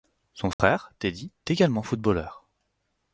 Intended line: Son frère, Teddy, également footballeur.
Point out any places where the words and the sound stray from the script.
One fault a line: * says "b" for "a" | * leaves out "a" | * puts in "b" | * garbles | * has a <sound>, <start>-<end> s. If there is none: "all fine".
* has a dropout, 0.5-0.6 s